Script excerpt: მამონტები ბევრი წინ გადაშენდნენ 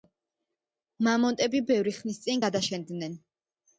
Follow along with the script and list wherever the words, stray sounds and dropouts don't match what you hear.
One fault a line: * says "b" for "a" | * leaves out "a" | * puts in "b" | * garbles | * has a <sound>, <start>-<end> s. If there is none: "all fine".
* puts in "ხნის"